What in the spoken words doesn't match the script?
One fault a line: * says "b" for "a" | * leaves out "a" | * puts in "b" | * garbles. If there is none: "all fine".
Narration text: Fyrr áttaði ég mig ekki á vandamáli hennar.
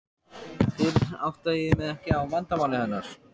all fine